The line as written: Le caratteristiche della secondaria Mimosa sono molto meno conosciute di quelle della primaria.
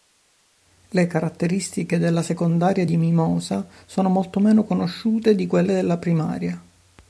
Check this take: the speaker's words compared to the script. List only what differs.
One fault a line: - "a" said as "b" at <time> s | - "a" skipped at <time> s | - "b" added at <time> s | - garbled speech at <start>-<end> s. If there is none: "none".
- "di" added at 2.8 s